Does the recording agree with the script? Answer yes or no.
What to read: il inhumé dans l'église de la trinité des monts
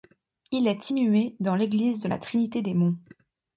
no